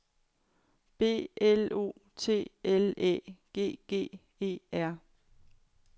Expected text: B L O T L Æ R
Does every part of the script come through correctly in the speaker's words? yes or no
no